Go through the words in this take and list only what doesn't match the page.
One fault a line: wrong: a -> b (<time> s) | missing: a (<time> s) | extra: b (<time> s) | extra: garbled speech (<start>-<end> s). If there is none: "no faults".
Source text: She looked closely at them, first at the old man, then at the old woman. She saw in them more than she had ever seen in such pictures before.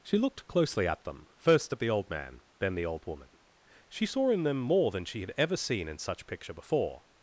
missing: at (2.7 s)
wrong: pictures -> picture (6.3 s)